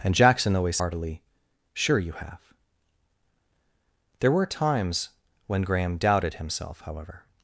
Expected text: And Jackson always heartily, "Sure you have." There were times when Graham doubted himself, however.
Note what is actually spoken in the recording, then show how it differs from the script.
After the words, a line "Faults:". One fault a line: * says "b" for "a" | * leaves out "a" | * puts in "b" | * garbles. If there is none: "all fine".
And Jackson always heartily, "Sure you have." There were times when Graham doubted himself, however.
Faults:
all fine